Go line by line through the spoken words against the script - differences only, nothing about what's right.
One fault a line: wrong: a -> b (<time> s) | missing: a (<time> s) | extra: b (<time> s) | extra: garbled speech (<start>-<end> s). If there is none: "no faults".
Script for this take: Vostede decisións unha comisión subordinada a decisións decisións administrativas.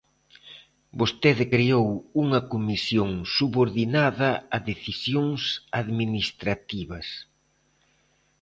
wrong: decisións -> creou (1.5 s)
missing: decisións (5.4 s)